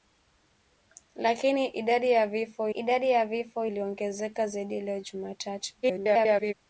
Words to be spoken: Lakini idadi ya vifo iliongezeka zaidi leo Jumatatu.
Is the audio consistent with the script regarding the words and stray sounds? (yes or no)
no